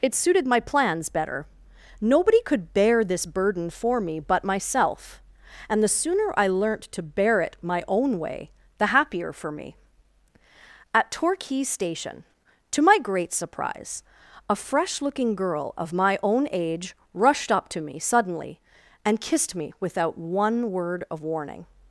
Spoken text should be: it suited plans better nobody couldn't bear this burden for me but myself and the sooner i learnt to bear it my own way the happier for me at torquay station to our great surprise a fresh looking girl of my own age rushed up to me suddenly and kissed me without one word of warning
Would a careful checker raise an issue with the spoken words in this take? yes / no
yes